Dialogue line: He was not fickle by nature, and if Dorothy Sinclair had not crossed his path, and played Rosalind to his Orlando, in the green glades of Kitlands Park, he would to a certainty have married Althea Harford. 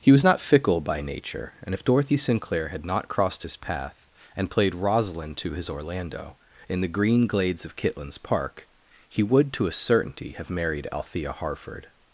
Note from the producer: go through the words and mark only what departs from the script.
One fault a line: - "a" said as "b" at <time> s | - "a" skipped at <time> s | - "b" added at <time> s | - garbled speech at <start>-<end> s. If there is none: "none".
none